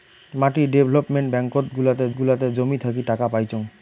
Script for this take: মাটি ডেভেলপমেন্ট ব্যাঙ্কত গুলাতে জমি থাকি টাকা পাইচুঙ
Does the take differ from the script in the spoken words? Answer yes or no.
yes